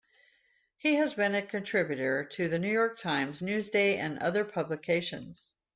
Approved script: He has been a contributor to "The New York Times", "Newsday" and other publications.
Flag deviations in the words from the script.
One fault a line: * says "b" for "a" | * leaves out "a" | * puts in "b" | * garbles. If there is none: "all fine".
all fine